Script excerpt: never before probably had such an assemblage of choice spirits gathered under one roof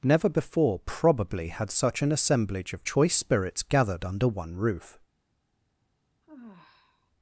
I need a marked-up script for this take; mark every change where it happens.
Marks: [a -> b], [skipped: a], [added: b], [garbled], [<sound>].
never before probably had such an assemblage of choice spirits gathered under one roof [sigh]